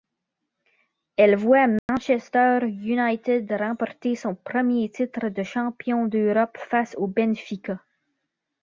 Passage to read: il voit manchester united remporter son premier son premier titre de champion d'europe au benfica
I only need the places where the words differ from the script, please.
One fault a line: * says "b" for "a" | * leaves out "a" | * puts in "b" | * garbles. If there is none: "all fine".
* says "elle" for "il"
* leaves out "son premier"
* puts in "face"